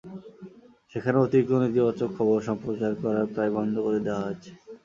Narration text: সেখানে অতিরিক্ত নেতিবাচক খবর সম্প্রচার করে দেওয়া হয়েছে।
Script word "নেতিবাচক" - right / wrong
right